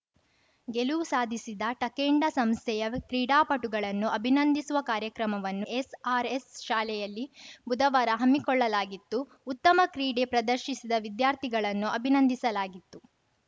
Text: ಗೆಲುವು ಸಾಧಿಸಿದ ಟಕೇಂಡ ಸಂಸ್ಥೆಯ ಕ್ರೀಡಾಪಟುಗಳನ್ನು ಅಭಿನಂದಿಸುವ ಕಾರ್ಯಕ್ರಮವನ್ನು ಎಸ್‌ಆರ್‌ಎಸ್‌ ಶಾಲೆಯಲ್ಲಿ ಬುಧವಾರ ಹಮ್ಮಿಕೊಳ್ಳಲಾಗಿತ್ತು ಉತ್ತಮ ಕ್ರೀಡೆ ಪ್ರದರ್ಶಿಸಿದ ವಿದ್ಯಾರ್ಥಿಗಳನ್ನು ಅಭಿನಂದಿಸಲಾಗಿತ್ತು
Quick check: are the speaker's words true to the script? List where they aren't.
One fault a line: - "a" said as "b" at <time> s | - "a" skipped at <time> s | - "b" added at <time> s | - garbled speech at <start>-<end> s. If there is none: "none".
none